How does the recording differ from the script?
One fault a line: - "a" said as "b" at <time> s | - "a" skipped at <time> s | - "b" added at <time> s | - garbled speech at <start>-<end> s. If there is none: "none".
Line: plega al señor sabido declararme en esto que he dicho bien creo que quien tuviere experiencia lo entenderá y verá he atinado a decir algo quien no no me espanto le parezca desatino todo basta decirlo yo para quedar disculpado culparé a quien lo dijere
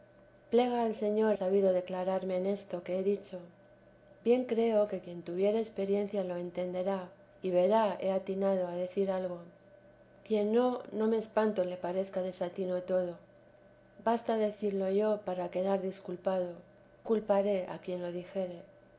none